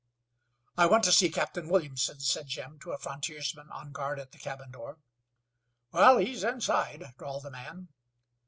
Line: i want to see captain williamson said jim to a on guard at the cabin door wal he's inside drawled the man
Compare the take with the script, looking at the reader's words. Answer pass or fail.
fail